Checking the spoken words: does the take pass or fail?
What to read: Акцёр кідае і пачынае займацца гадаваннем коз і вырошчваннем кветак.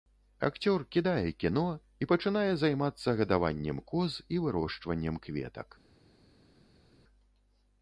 fail